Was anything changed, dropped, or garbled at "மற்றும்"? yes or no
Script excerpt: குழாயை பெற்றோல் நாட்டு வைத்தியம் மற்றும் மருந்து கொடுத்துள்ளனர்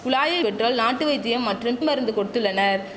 no